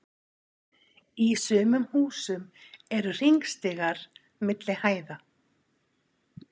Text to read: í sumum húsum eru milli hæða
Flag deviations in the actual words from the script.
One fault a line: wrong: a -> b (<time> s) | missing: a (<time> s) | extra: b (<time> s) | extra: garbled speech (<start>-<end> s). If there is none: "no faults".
extra: hringstigar (3.2 s)